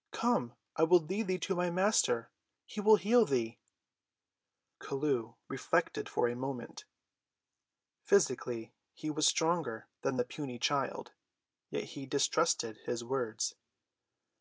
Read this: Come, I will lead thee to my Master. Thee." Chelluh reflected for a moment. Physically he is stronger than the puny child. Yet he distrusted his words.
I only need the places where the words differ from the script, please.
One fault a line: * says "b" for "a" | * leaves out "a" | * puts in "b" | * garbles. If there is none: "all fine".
* puts in "He will heal"
* says "was" for "is"